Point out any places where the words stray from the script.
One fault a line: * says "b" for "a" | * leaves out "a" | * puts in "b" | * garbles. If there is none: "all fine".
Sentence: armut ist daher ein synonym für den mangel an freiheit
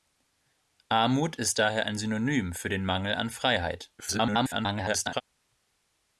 * garbles